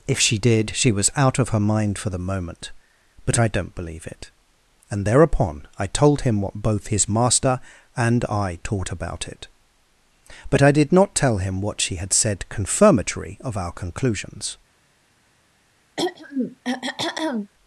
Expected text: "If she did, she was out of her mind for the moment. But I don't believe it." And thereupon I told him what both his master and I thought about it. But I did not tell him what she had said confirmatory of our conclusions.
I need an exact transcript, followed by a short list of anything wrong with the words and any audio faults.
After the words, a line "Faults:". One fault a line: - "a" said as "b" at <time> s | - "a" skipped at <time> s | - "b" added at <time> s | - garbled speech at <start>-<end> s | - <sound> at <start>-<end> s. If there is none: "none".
"If she did, she was out of her mind for the moment. But I don't believe it." And thereupon I told him what both his master and I taught about it. But I did not tell him what she had said confirmatory of our conclusions.
Faults:
- "thought" said as "taught" at 8.6 s
- throat clearing at 16.0-17.5 s